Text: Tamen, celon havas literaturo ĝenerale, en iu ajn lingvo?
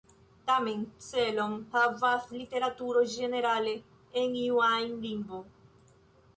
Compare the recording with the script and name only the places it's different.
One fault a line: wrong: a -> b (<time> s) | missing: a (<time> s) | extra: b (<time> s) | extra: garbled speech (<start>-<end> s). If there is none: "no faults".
no faults